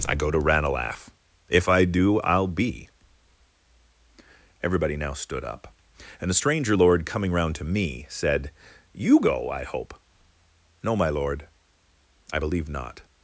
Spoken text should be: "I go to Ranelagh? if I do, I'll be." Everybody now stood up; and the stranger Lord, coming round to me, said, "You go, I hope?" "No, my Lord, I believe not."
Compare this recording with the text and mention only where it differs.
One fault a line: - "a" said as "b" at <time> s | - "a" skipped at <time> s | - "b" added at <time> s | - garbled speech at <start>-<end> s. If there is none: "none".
none